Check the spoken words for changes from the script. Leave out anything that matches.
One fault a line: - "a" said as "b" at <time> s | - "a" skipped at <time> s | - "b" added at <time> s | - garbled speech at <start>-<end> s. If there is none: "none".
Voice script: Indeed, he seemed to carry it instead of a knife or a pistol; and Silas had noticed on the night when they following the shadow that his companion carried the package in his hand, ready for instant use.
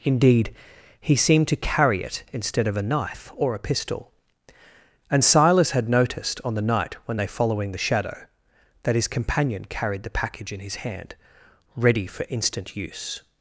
none